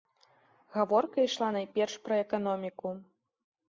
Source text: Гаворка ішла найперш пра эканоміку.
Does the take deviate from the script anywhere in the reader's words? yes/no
no